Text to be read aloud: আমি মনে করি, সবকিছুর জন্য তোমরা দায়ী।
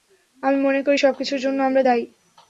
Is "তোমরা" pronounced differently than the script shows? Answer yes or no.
yes